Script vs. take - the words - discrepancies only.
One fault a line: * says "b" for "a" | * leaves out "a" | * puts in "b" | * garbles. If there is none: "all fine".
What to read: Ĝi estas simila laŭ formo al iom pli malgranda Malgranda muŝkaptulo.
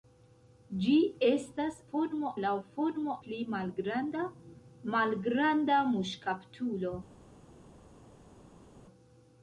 * says "formo" for "simila"
* leaves out "al iom"